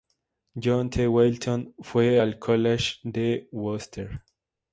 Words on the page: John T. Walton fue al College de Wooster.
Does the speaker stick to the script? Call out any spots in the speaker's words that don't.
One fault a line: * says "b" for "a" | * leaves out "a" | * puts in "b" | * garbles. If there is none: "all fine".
all fine